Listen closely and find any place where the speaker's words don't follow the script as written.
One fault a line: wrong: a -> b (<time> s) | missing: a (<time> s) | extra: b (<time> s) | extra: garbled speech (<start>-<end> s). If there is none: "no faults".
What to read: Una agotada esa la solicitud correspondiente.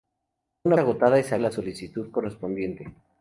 no faults